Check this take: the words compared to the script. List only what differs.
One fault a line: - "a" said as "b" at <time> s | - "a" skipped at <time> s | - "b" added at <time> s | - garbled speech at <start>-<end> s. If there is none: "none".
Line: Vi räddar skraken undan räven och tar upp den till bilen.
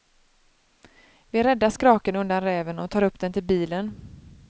none